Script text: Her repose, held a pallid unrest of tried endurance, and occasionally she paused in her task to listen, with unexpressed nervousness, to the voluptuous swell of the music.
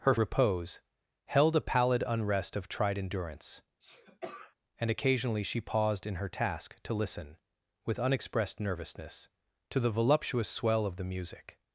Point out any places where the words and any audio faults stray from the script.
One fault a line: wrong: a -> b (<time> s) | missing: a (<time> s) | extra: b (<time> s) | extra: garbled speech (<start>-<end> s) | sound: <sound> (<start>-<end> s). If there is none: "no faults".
sound: sneeze (3.8-4.6 s)